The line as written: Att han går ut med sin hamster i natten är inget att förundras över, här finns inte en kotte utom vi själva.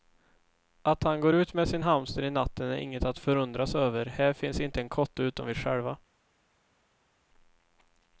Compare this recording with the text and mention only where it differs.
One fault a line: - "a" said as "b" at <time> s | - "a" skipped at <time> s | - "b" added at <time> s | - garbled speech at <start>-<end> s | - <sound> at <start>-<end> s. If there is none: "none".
none